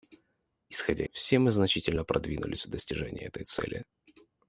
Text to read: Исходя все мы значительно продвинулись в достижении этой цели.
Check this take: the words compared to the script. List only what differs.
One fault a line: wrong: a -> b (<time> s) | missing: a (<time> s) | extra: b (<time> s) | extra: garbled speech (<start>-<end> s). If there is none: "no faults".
no faults